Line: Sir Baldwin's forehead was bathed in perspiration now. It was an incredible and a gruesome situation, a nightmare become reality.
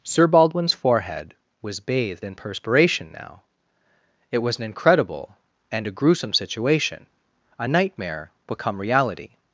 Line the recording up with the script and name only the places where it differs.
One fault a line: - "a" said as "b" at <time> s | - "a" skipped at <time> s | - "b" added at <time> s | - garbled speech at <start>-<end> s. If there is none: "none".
none